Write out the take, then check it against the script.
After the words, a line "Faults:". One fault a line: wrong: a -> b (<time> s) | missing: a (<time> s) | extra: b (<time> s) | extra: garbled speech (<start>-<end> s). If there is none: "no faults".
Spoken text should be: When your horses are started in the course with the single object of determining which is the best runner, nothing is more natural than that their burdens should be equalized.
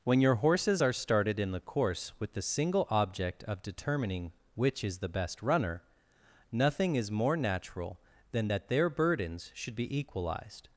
When your horses are started in the course with the single object of determining which is the best runner, nothing is more natural than that their burdens should be equalized.
Faults:
no faults